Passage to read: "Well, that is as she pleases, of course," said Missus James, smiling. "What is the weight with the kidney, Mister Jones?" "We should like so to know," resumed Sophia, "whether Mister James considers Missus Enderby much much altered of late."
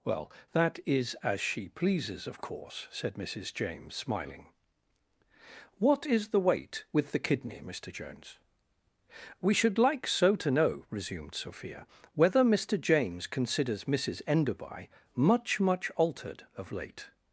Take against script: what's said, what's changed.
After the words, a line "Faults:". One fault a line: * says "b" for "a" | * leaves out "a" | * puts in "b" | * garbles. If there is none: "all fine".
"Well, that is as she pleases, of course," said Missus James, smiling. "What is the weight with the kidney, Mister Jones?" "We should like so to know," resumed Sophia, "whether Mister James considers Missus Enderby much much altered of late."
Faults:
all fine